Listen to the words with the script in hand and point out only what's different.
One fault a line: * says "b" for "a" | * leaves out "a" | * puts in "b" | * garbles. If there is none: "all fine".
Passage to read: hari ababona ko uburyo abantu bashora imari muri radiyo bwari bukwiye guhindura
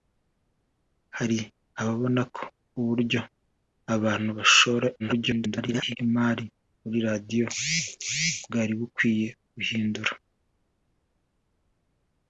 * garbles